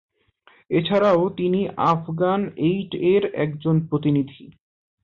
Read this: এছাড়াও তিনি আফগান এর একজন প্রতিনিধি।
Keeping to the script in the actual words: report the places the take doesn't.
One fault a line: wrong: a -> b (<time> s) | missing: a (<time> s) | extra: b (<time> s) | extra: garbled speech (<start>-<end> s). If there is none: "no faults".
extra: এইড (2.7 s)